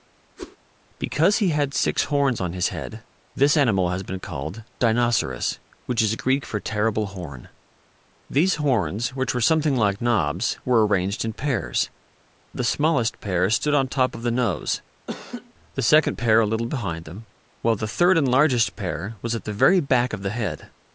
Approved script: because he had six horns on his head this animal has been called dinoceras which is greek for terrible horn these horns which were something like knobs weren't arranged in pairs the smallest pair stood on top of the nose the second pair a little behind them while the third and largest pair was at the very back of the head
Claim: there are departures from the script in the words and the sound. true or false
true